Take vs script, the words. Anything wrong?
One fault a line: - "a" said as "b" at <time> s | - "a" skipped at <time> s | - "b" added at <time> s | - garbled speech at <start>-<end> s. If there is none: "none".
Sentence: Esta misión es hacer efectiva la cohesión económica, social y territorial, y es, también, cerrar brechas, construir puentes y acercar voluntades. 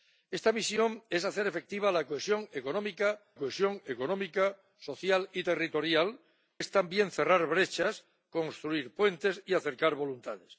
- "cohesión económica" added at 3.4 s
- "y" skipped at 6.2 s